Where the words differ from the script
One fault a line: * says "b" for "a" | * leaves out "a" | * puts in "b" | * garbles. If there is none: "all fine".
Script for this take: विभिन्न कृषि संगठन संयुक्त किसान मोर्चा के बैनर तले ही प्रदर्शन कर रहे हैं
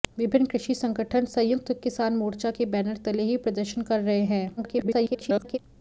* garbles